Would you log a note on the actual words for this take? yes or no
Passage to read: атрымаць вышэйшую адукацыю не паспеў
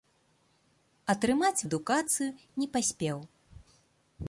yes